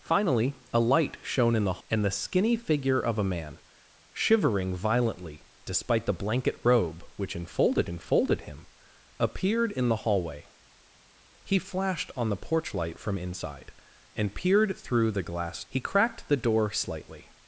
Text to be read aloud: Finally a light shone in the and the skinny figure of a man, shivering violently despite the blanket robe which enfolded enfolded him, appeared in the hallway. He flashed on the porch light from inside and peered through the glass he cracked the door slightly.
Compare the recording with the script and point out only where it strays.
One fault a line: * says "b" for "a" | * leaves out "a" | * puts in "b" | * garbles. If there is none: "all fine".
all fine